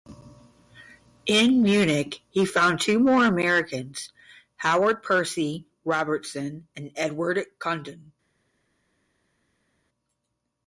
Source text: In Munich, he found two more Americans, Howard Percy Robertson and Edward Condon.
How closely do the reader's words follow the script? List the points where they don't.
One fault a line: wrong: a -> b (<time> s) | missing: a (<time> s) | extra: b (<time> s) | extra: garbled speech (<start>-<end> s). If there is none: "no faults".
no faults